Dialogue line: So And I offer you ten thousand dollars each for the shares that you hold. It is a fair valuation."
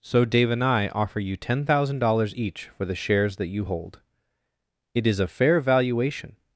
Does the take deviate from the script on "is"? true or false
false